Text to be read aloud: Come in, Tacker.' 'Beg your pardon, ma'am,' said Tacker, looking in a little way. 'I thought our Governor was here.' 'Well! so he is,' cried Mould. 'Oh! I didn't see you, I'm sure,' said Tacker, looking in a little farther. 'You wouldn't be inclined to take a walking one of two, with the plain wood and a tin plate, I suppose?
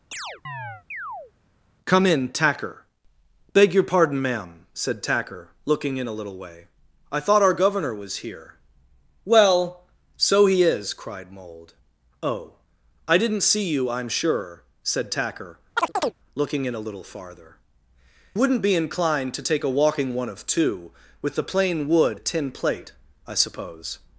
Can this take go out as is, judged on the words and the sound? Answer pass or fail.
fail